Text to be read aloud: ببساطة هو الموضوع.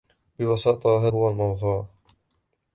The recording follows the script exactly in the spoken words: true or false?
true